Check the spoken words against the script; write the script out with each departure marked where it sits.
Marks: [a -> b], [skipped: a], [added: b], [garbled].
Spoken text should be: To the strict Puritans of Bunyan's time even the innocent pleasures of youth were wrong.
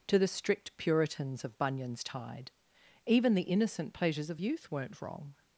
To the strict Puritans of Bunyan's [time -> tide] even the innocent pleasures of youth [were -> weren't] wrong.